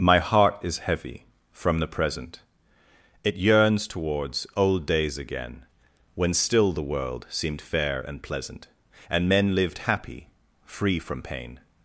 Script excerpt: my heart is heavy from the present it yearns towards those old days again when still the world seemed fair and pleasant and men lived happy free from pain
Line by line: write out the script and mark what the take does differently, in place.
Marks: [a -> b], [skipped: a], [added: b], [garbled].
my heart is heavy from the present it yearns towards [skipped: those] old days again when still the world seemed fair and pleasant and men lived happy free from pain